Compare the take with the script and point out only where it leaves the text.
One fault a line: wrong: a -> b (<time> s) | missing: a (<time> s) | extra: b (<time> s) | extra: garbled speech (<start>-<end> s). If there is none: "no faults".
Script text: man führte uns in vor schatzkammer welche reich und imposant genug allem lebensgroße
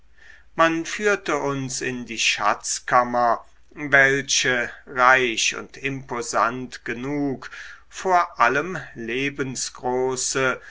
wrong: vor -> die (2.1 s)
extra: vor (7.9 s)